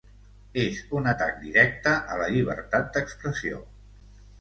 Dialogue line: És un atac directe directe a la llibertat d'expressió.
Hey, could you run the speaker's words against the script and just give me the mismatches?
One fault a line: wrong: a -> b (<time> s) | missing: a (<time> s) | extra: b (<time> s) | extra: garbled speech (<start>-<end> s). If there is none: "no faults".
missing: directe (2.0 s)